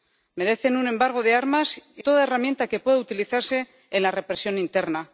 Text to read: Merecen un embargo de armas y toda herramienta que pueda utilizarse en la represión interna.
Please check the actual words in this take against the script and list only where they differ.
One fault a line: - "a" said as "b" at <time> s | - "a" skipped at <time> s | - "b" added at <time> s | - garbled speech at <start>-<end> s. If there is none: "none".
none